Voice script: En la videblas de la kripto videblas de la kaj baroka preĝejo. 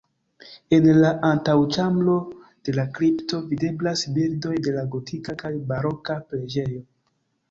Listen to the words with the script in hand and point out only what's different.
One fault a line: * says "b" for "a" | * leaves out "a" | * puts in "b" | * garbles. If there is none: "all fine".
* says "antaŭĉambro" for "videblas"
* puts in "bildoj"
* puts in "gotika"